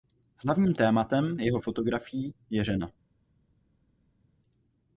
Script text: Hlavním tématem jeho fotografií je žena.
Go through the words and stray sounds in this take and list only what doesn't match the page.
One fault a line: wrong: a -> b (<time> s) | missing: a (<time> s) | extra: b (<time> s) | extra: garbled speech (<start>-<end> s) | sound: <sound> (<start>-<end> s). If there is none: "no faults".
no faults